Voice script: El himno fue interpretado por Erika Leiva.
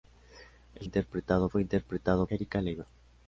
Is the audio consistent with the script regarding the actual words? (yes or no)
no